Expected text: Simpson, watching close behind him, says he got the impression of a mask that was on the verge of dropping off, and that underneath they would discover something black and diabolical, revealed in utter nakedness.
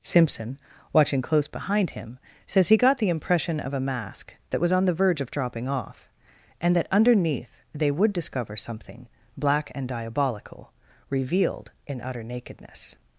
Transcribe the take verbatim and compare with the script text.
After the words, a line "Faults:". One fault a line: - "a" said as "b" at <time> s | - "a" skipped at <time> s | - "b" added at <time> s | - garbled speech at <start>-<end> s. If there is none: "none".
Simpson, watching close behind him, says he got the impression of a mask that was on the verge of dropping off, and that underneath they would discover something black and diabolical, revealed in utter nakedness.
Faults:
none